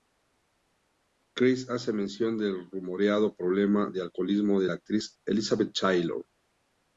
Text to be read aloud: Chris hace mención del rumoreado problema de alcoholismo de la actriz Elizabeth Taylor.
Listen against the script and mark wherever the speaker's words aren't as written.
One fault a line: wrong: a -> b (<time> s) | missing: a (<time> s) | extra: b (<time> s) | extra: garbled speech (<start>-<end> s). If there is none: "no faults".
no faults